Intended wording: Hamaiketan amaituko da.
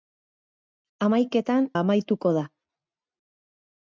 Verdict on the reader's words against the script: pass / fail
pass